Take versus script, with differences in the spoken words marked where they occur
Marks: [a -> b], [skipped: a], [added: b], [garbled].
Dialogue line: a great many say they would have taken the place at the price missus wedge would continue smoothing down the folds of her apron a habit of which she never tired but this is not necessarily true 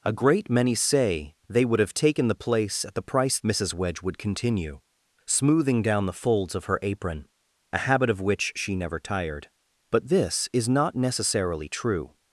a great many say they would have taken the place at the price missus wedge would continue smoothing down the folds of her apron a habit of which she never tired but this is not necessarily true